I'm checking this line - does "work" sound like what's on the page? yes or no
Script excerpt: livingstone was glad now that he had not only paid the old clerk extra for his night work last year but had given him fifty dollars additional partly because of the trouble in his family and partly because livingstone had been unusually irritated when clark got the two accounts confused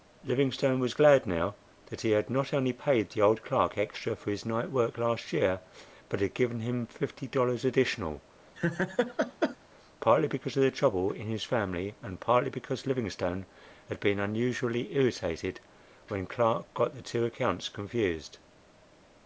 yes